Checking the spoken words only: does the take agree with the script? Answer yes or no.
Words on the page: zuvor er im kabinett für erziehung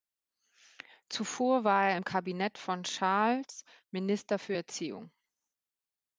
no